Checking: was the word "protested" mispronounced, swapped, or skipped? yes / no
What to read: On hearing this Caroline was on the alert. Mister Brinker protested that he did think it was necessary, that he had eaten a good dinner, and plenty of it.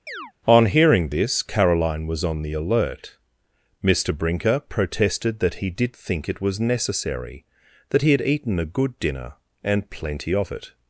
no